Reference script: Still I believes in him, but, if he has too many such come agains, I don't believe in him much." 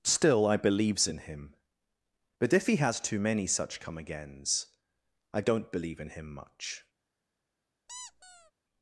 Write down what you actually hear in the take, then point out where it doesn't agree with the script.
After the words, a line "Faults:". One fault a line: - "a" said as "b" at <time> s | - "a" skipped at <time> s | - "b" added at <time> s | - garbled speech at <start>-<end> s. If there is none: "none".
Still I believes in him, but, if he has too many such come agains, I don't believe in him much."
Faults:
none